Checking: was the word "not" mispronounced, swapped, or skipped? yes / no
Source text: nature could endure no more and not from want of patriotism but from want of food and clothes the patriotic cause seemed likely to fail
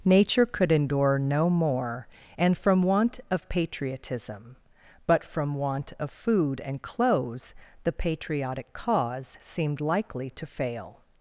yes